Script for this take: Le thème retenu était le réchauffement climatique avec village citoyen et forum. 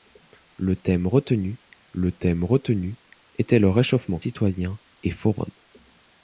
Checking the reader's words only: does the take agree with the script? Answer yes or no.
no